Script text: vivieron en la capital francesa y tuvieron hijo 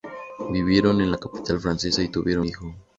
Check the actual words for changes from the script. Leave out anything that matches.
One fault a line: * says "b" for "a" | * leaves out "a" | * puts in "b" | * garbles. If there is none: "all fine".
all fine